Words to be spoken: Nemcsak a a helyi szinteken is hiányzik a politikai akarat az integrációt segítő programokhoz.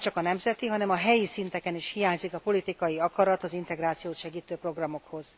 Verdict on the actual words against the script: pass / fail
fail